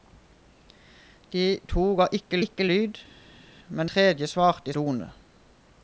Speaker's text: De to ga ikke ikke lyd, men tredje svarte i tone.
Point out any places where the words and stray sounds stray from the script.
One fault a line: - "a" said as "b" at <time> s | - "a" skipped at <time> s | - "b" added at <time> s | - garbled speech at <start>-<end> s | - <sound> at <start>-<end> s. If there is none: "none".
none